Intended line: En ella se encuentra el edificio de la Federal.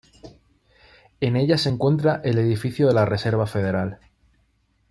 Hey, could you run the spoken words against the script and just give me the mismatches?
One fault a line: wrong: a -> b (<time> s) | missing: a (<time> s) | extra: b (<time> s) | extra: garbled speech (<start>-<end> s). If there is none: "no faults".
extra: Reserva (3.0 s)